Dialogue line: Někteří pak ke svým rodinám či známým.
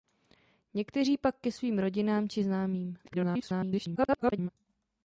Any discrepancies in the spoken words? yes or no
yes